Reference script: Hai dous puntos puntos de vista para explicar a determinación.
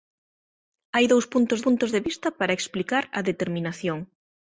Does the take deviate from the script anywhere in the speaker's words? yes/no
no